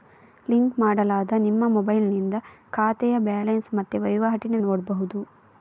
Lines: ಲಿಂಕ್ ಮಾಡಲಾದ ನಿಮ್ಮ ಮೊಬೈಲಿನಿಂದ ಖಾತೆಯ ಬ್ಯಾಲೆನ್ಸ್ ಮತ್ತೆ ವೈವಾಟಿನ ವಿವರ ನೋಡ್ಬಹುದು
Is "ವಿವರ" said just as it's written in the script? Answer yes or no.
no